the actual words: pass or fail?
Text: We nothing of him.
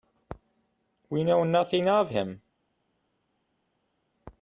fail